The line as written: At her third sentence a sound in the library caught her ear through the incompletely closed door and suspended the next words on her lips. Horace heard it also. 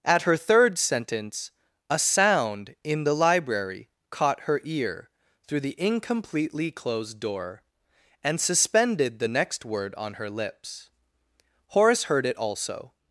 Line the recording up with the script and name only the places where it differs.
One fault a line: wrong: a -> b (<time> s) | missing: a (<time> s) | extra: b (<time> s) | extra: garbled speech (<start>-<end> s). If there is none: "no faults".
wrong: words -> word (9.6 s)